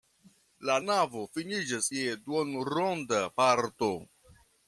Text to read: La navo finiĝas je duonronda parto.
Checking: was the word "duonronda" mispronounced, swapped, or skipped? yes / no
no